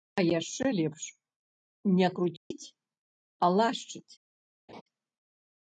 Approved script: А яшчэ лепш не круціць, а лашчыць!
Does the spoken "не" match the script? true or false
true